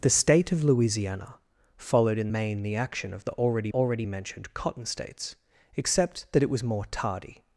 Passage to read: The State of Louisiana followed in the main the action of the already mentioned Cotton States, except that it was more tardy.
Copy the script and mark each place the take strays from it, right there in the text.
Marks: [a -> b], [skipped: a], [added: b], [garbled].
The State of Louisiana followed in [skipped: the] main the action of the already [added: already] mentioned Cotton States, except that it was more tardy.